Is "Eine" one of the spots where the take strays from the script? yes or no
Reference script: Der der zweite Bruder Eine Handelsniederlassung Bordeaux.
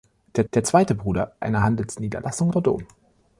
no